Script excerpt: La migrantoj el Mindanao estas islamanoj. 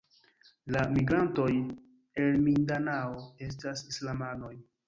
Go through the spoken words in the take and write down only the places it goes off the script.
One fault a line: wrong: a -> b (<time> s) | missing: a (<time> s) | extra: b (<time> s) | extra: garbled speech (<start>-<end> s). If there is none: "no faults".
no faults